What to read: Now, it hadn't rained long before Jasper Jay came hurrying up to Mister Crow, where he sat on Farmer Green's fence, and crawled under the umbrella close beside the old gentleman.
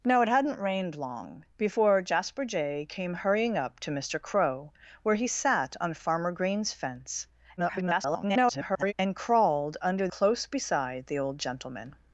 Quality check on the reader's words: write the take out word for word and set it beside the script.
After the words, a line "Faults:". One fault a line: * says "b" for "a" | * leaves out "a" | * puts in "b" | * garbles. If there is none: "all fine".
Now, it hadn't rained long before Jasper Jay came hurrying up to Mister Crow, where he sat on Farmer Green's fence, [garbled] and crawled under close beside the old gentleman.
Faults:
* garbles
* leaves out "the umbrella"